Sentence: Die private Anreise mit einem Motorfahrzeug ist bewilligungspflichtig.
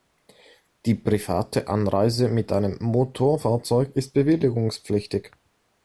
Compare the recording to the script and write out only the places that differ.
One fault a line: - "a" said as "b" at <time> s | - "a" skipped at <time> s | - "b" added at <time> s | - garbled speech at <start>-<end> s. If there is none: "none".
none